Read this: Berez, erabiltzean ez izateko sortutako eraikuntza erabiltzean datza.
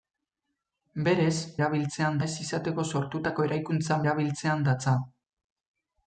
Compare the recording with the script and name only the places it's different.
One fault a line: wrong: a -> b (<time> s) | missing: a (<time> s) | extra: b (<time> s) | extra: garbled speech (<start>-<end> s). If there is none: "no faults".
no faults